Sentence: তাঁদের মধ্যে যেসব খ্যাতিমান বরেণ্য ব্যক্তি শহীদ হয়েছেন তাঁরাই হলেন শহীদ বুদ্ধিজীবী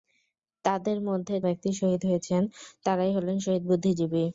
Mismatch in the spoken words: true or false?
true